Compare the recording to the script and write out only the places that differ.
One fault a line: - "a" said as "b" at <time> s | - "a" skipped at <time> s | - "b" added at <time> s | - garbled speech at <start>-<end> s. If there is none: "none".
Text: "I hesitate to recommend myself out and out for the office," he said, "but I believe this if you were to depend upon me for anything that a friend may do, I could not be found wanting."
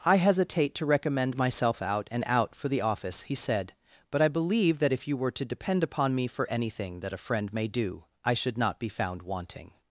- "this" said as "that" at 4.8 s
- "could" said as "should" at 8.3 s